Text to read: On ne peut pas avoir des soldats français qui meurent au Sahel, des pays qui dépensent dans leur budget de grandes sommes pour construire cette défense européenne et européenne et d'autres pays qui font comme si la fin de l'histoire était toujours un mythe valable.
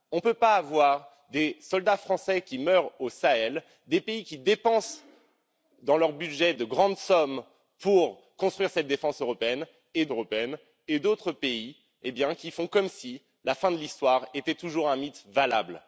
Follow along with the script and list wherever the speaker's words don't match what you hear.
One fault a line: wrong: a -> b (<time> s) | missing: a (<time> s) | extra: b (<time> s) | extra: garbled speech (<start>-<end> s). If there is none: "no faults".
no faults